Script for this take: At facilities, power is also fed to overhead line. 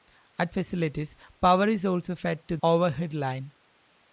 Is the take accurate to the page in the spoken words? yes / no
yes